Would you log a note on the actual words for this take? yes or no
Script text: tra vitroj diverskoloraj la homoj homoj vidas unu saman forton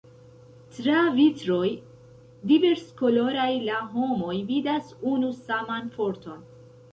yes